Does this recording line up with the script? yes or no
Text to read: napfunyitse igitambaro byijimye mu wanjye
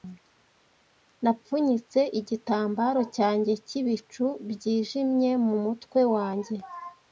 no